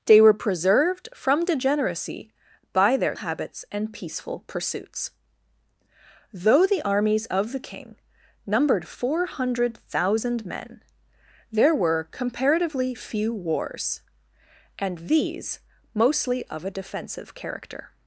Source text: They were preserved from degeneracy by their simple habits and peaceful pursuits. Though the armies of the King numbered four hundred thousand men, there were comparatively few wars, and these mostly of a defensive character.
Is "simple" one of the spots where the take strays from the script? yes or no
yes